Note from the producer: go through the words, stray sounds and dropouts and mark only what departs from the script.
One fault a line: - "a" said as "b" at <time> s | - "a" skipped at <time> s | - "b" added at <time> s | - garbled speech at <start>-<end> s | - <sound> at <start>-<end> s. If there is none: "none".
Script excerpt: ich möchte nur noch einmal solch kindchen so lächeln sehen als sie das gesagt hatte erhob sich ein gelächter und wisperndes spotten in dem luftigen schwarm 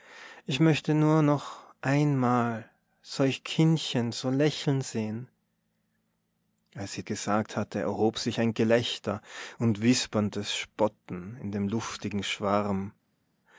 - "das" skipped at 7.0 s